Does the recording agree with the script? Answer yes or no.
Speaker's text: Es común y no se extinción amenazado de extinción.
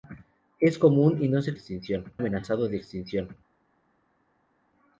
yes